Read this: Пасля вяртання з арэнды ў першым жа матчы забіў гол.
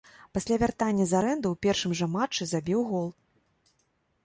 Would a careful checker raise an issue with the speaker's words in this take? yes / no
no